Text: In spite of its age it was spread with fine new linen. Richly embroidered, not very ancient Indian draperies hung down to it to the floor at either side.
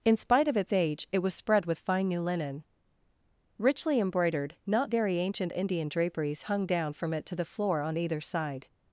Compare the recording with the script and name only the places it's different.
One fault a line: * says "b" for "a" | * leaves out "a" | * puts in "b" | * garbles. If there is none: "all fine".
* says "from" for "to"
* says "on" for "at"